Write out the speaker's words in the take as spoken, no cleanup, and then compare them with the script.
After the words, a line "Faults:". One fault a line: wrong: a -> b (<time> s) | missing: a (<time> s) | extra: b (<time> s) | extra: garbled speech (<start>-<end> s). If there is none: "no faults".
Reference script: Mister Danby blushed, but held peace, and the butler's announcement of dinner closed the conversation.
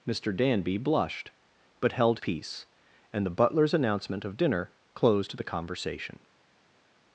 Mister Danby blushed, but held peace, and the butler's announcement of dinner closed the conversation.
Faults:
no faults